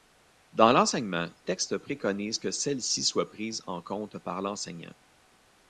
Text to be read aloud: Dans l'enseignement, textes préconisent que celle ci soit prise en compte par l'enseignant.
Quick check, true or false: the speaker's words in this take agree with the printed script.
true